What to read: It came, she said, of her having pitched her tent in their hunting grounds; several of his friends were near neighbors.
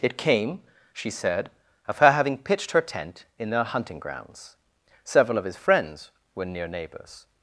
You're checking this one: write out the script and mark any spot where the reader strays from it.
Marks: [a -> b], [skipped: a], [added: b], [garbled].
It came, she said, of her having pitched her tent in their hunting grounds; several of his friends were near neighbors.